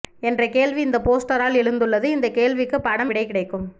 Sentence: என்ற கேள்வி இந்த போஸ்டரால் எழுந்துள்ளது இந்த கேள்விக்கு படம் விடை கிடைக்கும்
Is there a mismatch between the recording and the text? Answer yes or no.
no